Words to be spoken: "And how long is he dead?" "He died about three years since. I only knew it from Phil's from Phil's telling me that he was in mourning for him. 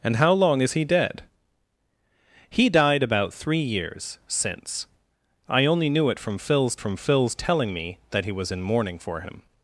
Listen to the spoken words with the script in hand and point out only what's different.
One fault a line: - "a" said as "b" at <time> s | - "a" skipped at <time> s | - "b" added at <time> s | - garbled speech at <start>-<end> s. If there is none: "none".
none